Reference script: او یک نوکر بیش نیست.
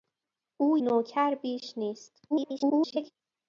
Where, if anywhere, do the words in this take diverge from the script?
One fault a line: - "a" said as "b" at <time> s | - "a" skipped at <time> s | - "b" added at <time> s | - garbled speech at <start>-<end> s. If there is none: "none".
- "یک" skipped at 0.8 s
- garbled speech at 2.3-3.1 s